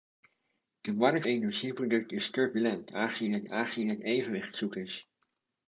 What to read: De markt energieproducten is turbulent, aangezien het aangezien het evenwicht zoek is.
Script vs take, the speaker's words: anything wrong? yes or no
no